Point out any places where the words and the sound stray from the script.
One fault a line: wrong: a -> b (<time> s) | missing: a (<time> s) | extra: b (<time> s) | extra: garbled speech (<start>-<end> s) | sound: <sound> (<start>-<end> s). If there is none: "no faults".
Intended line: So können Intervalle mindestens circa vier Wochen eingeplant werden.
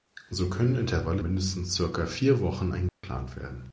sound: dropout (2.9-3.0 s)